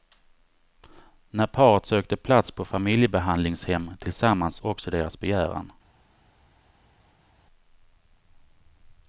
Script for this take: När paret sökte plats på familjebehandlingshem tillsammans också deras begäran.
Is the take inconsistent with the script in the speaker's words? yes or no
no